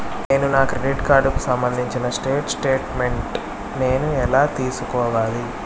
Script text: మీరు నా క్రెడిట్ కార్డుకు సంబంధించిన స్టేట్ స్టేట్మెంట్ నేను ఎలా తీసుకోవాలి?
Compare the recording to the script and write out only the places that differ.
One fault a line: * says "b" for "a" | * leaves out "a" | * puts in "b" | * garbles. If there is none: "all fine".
* says "నేను" for "మీరు"